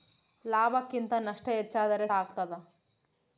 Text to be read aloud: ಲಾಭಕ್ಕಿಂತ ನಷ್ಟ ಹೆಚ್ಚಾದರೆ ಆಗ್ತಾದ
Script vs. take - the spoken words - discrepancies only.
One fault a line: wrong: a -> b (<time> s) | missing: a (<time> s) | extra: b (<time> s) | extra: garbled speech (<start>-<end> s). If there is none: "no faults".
no faults